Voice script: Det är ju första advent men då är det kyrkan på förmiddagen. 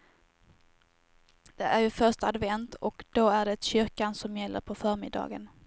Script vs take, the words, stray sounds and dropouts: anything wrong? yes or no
yes